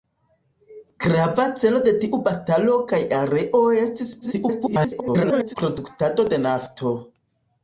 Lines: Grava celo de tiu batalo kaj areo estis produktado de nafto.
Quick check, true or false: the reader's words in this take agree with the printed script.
false